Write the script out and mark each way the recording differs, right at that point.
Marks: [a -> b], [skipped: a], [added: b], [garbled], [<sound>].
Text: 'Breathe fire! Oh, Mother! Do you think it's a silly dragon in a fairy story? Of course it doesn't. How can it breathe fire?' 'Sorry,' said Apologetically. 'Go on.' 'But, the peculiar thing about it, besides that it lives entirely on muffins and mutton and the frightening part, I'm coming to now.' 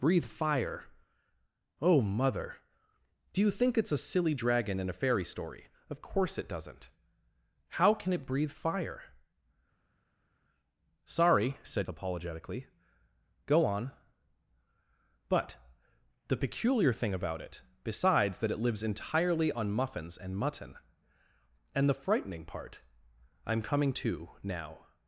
'Breathe fire! Oh, Mother! Do you think it's a silly dragon in a fairy story? Of course it doesn't. How can it breathe fire?' 'Sorry,' said Apologetically. 'Go on.' 'But, the peculiar thing about it, besides that it lives entirely on muffins and mutton and the frightening part, I'm coming to now.'